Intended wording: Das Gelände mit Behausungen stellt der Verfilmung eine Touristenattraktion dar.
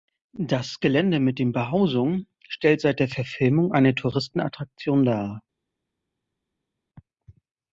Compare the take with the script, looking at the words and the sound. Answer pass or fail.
fail